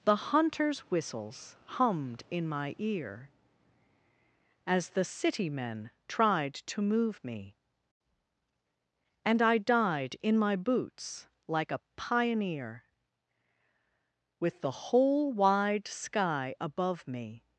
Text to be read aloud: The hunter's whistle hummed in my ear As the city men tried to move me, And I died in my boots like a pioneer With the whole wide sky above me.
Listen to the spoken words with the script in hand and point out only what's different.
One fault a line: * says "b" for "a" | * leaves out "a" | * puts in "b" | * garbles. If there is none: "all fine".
* says "whistles" for "whistle"